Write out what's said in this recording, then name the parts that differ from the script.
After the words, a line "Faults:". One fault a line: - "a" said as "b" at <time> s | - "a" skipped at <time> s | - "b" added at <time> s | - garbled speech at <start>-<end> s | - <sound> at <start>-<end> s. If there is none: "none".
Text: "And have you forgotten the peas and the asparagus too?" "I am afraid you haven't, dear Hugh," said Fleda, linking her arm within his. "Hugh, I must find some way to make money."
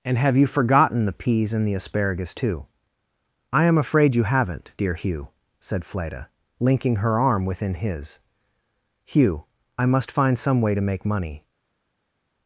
"And have you forgotten the peas and the asparagus too?" "I am afraid you haven't, dear Hugh," said Fleda, linking her arm within his. "Hugh, I must find some way to make money."
Faults:
none